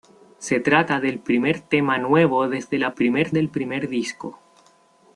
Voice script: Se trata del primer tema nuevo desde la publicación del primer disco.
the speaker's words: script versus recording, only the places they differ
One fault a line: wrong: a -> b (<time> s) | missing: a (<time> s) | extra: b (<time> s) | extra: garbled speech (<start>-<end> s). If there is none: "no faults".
wrong: publicación -> primer (2.9 s)